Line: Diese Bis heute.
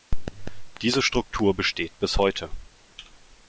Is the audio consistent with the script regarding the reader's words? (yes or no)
no